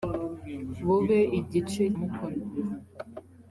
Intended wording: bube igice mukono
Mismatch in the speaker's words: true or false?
false